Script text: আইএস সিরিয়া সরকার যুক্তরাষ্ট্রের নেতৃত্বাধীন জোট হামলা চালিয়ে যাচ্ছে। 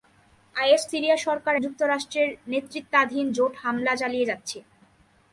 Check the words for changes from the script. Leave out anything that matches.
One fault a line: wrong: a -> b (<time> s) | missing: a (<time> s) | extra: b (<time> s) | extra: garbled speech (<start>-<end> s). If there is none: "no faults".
no faults